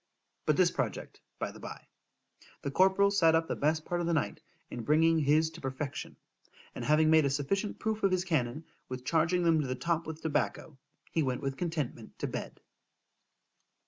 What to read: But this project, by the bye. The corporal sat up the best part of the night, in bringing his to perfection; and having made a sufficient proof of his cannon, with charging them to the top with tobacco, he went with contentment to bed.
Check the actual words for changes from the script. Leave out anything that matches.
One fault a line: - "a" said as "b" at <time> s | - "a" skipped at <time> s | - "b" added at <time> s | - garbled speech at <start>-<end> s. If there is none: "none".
none